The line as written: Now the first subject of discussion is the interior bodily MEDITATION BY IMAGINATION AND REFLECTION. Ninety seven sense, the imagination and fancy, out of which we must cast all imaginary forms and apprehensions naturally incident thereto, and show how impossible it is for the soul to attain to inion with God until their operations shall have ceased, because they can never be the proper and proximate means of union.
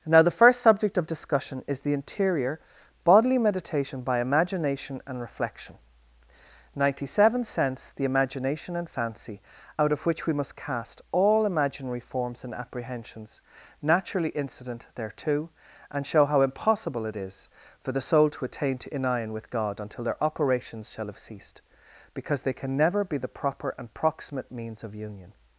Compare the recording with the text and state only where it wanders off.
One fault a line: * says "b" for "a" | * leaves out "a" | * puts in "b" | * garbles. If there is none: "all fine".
all fine